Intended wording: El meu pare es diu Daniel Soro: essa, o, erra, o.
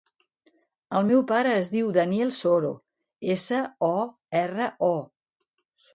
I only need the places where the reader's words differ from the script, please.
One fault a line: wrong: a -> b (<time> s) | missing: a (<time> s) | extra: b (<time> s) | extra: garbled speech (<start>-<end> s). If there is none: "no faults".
no faults